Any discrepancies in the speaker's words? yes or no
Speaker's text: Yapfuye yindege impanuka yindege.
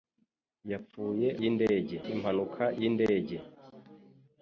no